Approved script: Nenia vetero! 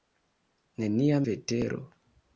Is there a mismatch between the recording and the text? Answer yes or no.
no